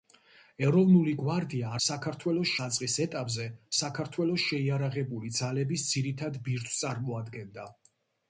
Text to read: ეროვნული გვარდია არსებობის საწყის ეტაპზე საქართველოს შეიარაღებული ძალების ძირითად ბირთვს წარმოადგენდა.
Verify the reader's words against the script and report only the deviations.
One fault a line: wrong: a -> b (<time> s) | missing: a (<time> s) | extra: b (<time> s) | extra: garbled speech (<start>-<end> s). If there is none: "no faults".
wrong: არსებობის -> საქართველოს (1.9 s)